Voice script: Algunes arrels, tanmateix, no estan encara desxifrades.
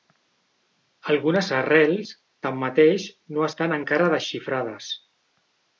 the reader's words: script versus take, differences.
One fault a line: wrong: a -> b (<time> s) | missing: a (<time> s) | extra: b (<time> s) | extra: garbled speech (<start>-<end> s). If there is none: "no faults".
no faults